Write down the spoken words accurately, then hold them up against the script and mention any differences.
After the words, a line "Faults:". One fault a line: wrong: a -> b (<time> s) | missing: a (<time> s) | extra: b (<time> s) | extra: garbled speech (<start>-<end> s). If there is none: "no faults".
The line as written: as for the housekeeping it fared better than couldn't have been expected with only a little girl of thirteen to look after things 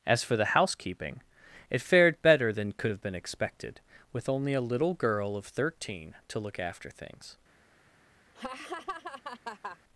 as for the housekeeping it fared better than could have been expected with only a little girl of thirteen to look after things
Faults:
wrong: couldn't -> could (2.7 s)